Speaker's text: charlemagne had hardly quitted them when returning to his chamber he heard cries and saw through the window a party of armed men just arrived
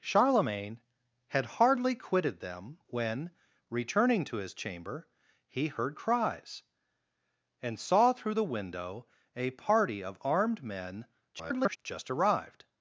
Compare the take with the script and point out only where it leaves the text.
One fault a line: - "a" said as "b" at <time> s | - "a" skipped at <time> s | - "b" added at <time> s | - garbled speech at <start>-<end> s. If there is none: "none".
- garbled speech at 11.3-11.8 s